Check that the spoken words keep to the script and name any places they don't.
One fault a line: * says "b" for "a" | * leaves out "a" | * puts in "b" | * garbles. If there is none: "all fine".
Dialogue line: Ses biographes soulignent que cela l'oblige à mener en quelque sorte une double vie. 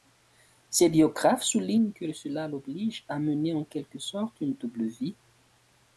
all fine